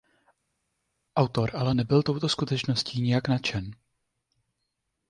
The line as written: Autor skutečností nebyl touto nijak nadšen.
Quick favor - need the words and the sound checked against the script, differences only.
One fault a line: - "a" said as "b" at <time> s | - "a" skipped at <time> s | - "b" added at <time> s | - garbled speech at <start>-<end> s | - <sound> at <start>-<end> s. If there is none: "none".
- "skutečností" said as "ale" at 1.5 s
- "skutečností" added at 2.3 s